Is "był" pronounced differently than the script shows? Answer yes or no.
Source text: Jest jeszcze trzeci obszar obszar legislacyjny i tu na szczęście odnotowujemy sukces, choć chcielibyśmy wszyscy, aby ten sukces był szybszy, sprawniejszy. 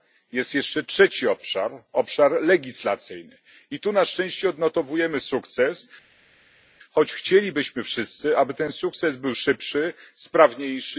no